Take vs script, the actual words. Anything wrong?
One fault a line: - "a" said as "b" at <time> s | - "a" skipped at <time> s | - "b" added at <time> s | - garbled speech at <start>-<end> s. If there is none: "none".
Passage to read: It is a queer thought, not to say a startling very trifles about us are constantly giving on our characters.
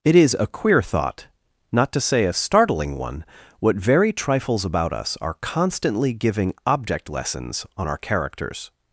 - "one what" added at 3.0 s
- "object lessons" added at 6.7 s